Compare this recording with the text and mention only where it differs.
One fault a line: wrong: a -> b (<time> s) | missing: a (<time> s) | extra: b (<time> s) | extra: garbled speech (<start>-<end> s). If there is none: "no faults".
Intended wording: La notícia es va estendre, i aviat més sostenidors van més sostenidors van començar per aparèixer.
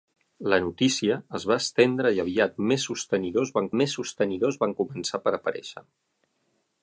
no faults